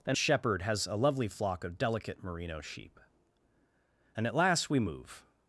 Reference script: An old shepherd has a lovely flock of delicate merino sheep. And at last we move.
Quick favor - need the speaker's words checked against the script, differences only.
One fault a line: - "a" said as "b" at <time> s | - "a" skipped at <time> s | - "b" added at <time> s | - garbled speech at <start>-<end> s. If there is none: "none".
- "old" skipped at 0.2 s